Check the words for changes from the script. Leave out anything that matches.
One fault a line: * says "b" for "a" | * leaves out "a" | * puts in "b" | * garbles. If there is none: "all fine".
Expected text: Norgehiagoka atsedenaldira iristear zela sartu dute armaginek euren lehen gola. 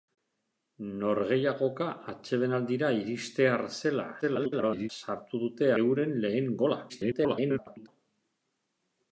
* garbles
* leaves out "armaginek"
* garbles